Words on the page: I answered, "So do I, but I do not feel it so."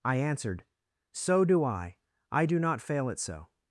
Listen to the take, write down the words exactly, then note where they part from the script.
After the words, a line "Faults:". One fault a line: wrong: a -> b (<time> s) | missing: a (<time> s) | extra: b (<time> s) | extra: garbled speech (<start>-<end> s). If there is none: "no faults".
I answered, "So do I, I do not fail it so."
Faults:
missing: but (2.0 s)
wrong: feel -> fail (2.8 s)